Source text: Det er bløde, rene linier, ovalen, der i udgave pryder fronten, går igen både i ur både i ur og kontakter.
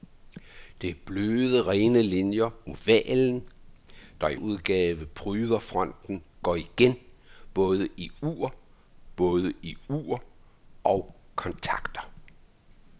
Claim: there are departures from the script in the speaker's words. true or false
false